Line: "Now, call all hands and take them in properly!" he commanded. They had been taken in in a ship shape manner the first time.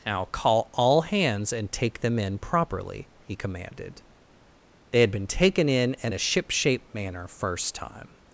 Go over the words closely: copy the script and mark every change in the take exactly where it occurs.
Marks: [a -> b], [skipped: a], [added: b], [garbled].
"Now, call all hands and take them in properly!" he commanded. They had been taken in in a ship shape manner [skipped: the] first time.